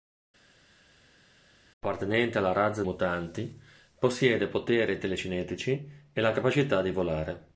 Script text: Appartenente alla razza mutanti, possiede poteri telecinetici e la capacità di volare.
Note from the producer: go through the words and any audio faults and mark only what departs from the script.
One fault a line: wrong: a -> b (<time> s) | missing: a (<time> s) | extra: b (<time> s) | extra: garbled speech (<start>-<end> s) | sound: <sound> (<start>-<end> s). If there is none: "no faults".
no faults